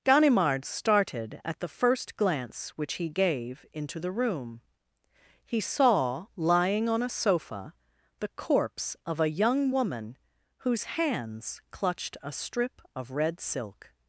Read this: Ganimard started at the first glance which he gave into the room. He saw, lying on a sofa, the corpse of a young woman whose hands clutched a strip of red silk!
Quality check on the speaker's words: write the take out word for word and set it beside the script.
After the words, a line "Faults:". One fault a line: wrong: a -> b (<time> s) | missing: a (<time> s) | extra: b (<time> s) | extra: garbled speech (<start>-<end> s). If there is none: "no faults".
Ganimard started at the first glance which he gave into the room. He saw, lying on a sofa, the corpse of a young woman whose hands clutched a strip of red silk!
Faults:
no faults